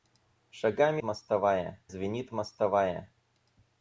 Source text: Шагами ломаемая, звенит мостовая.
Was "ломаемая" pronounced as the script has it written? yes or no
no